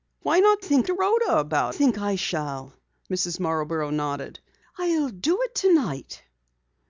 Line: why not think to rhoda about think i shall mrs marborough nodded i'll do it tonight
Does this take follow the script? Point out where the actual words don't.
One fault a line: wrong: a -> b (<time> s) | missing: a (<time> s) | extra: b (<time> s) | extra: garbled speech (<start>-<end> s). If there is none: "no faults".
no faults